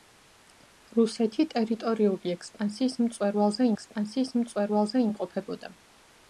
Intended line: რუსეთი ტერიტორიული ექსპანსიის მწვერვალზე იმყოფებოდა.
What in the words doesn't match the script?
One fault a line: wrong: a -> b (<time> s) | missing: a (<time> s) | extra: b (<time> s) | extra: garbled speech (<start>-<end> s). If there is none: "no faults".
extra: ექსპანსიის მწვერვალზე (3.7 s)